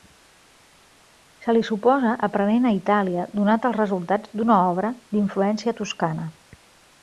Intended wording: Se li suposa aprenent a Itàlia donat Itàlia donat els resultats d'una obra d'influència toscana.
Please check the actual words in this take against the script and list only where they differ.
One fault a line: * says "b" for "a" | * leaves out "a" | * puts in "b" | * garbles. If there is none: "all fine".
* leaves out "Itàlia donat"